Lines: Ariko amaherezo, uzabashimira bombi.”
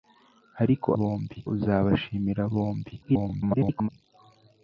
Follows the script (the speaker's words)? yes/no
no